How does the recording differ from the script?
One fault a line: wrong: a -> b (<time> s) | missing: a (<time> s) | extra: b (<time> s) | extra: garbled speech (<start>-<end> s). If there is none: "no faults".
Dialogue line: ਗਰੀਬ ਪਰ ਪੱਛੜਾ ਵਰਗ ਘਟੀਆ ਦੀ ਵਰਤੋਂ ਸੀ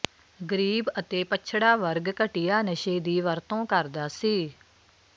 wrong: ਪਰ -> ਅਤੇ (1.0 s)
extra: ਨਸ਼ੇ (2.6 s)
extra: ਕਰਦਾ (3.6 s)